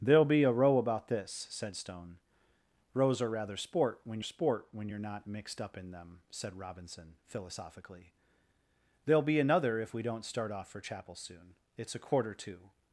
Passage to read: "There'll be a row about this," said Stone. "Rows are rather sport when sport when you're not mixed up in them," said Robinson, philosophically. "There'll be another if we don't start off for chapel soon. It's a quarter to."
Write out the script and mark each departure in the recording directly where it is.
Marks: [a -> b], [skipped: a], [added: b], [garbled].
"There'll be a row about this," said Stone. "Rows are rather sport when sport when you're not mixed up in them," said Robinson, philosophically. "There'll be another if we don't start off for chapel soon. It's a quarter to."